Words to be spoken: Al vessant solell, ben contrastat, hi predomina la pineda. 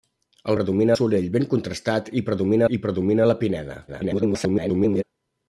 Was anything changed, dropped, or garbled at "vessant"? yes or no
yes